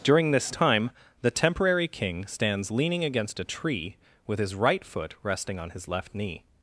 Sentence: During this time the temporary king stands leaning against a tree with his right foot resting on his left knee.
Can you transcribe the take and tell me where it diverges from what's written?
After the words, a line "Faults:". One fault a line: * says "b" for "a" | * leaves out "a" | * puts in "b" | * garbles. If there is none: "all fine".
During this time the temporary king stands leaning against a tree with his right foot resting on his left knee.
Faults:
all fine